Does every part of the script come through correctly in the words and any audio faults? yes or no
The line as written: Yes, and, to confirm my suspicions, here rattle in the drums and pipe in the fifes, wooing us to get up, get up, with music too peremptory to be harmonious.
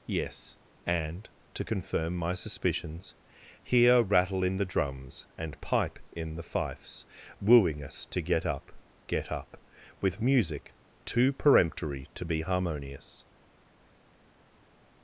yes